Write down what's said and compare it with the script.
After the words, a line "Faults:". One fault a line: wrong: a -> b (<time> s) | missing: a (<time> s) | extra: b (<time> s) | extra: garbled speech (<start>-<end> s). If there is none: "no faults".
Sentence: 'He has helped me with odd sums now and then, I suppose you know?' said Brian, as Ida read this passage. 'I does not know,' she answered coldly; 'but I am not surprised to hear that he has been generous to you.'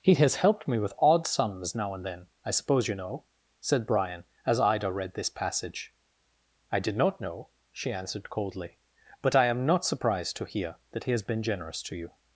'He has helped me with odd sums now and then, I suppose you know?' said Brian, as Ida read this passage. 'I did not know,' she answered coldly; 'but I am not surprised to hear that he has been generous to you.'
Faults:
wrong: does -> did (6.8 s)